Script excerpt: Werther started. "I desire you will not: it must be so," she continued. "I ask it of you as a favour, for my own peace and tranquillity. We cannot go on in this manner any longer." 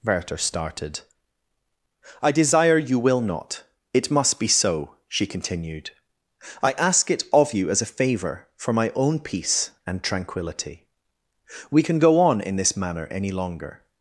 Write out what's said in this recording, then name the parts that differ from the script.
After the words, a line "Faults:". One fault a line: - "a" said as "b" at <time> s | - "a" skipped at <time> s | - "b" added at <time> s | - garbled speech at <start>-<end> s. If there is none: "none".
Werther started. "I desire you will not: it must be so," she continued. "I ask it of you as a favour, for my own peace and tranquillity. We can go on in this manner any longer."
Faults:
- "cannot" said as "can" at 11.8 s